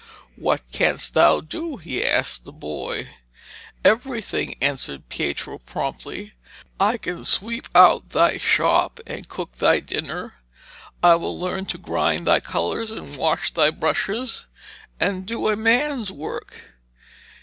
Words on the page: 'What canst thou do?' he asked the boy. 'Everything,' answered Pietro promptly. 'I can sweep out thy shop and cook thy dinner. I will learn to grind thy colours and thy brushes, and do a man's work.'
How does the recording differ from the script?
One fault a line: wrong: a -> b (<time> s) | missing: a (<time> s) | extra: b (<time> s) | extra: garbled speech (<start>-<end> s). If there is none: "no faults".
extra: wash (13.2 s)